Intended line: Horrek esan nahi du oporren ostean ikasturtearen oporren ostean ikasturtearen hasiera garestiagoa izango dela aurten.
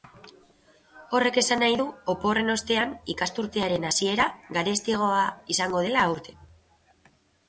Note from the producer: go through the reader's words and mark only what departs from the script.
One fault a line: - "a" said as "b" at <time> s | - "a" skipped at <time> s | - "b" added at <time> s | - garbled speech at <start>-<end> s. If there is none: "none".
- "oporren ostean ikasturtearen" skipped at 3.9 s